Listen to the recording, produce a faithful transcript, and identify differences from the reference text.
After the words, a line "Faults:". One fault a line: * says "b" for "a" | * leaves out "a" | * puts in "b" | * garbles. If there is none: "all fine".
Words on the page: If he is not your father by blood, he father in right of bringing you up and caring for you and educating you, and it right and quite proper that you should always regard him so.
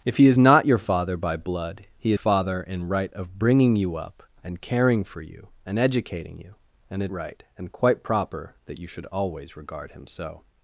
If he is not your father by blood, he father in right of bringing you up and caring for you and educating you, and it right and quite proper that you should always regard him so.
Faults:
all fine